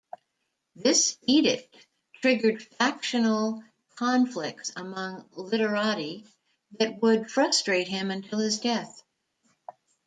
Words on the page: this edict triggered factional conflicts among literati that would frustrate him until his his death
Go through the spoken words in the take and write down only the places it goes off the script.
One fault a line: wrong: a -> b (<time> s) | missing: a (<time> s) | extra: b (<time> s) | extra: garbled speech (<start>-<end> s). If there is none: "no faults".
missing: his (8.6 s)